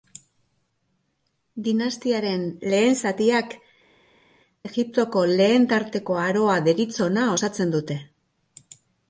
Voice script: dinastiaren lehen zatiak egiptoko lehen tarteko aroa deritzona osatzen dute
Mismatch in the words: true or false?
false